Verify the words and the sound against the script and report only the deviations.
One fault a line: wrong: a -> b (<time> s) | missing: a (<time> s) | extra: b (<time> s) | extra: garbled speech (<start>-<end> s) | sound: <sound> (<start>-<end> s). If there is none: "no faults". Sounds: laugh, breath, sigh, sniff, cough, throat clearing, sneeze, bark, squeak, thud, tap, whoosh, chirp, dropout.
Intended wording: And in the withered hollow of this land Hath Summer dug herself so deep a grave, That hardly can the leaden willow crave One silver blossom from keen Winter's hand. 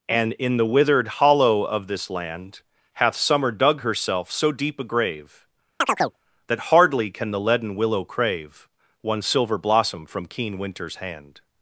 sound: chirp (5.8-6.2 s)